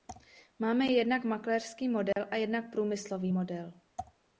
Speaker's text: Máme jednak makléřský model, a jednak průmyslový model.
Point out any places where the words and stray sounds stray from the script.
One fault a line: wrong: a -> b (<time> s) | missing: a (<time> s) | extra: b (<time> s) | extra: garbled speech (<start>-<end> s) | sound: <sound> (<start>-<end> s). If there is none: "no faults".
sound: dropout (2.1-2.2 s)